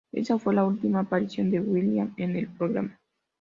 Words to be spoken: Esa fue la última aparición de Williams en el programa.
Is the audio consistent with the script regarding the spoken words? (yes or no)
yes